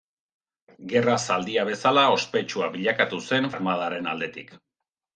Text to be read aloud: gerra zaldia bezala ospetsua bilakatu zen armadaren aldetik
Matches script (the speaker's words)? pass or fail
pass